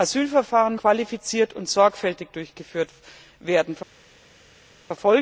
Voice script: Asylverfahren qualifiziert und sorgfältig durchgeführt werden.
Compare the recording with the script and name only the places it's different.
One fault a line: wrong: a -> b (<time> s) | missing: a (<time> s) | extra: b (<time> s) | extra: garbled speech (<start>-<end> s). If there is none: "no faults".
no faults